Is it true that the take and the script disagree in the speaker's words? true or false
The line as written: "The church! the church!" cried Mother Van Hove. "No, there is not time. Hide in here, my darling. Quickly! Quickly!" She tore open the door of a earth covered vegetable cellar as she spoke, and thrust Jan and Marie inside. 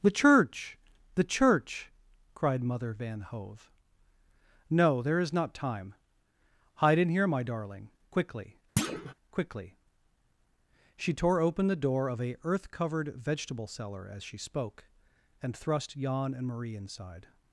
false